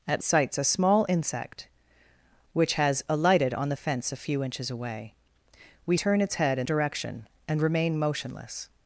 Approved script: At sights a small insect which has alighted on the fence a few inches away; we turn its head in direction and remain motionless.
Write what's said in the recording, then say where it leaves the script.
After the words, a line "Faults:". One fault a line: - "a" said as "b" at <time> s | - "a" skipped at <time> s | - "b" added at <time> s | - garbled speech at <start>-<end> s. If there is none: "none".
At sights a small insect which has alighted on the fence a few inches away; we turn its head in direction and remain motionless.
Faults:
none